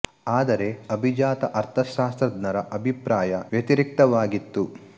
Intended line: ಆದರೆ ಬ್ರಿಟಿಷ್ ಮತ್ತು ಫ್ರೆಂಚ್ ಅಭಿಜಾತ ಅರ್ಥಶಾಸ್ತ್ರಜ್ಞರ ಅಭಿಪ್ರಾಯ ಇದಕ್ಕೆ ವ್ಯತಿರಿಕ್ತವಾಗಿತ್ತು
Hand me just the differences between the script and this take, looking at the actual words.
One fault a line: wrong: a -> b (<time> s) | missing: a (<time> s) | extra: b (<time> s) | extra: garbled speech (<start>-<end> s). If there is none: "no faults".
missing: ಬ್ರಿಟಿಷ್ ಮತ್ತು ಫ್ರೆಂಚ್ (0.7 s)
missing: ಇದಕ್ಕೆ (3.3 s)